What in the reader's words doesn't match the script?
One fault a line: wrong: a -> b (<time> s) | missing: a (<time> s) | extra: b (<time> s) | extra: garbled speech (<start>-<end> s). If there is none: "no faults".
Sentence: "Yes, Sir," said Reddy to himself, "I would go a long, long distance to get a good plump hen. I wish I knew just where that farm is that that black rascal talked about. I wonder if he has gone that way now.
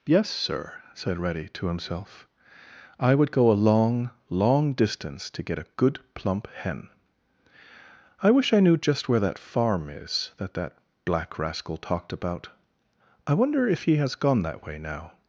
no faults